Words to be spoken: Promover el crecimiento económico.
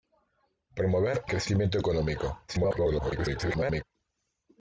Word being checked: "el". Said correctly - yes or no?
no